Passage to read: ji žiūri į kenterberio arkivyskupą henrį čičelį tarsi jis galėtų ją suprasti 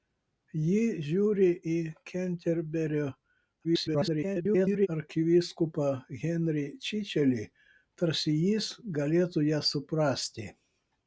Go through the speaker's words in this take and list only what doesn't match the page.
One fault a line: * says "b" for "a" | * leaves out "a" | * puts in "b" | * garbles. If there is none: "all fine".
* garbles